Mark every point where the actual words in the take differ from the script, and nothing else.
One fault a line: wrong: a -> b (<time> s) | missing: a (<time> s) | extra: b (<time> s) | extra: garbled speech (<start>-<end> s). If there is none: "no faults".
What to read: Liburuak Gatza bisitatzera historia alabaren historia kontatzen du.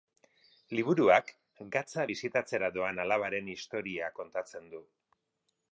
wrong: historia -> doan (2.8 s)